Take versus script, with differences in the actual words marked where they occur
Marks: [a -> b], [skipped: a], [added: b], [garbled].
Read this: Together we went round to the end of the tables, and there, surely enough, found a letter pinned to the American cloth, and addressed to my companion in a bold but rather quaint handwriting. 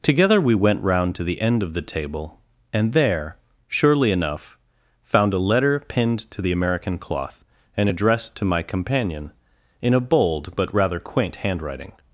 Together we went round to the end of the [tables, -> table] and there, surely enough, found a letter pinned to the American cloth, and addressed to my companion in a bold but rather quaint handwriting.